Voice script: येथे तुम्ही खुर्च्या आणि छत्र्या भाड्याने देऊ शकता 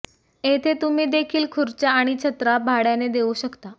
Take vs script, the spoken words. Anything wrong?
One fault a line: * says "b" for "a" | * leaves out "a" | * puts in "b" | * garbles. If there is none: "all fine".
* puts in "देखील"